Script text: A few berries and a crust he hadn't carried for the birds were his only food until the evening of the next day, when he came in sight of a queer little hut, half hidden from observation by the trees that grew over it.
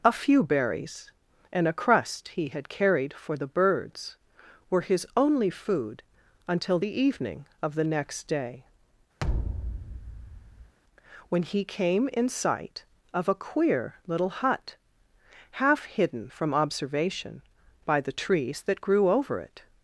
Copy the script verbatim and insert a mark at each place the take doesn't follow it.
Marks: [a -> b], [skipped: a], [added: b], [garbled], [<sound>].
A few berries and a crust he [hadn't -> had] carried for the birds were his only food until the evening of the next day, [thud] when he came in sight of a queer little hut, half hidden from observation by the trees that grew over it.